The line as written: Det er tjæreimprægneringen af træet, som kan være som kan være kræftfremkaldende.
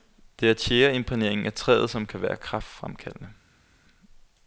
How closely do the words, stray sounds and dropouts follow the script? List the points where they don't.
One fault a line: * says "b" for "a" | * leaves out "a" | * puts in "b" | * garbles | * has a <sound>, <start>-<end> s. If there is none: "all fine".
* leaves out "som kan være"